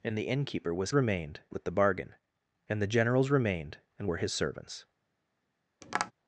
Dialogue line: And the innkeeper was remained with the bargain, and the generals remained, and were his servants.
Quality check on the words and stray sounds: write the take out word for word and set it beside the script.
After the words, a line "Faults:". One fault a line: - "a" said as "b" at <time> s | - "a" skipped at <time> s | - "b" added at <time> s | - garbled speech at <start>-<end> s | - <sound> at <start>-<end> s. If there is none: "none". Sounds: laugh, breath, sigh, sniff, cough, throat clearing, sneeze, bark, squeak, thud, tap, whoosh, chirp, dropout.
And the innkeeper was remained with the bargain, and the generals remained, and were his servants.
Faults:
- tap at 5.8-6.1 s